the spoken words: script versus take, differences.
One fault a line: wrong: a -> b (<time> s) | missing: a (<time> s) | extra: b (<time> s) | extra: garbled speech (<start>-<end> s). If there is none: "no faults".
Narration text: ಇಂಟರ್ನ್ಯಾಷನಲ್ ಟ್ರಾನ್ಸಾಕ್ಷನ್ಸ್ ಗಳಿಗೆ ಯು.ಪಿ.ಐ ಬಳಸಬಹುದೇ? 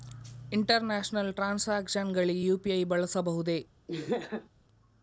no faults